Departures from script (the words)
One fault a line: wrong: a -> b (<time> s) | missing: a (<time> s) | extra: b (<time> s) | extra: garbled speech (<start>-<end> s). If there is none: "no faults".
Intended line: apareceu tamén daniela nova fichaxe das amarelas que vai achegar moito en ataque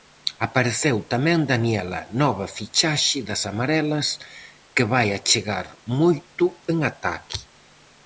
no faults